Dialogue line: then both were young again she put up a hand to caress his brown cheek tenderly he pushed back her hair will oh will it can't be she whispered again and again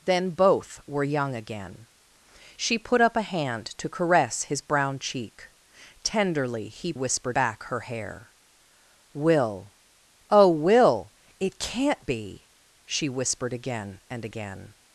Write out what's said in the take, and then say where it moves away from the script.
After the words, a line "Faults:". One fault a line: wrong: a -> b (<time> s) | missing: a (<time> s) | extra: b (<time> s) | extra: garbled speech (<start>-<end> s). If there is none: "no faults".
then both were young again she put up a hand to caress his brown cheek tenderly he whispered back her hair will oh will it can't be she whispered again and again
Faults:
wrong: pushed -> whispered (6.9 s)